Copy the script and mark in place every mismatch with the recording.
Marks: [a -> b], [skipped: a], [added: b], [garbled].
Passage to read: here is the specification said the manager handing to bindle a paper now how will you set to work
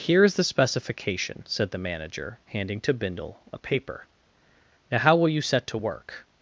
here is the specification said the manager handing to bindle a paper now how will you set to work